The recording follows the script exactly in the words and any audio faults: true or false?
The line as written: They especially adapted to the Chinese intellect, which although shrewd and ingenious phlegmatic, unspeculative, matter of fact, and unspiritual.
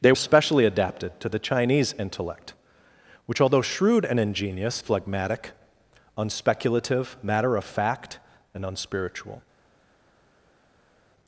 true